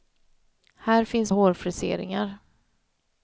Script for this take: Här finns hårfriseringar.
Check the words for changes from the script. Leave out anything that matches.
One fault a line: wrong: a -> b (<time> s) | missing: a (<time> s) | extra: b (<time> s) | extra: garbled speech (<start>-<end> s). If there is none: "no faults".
no faults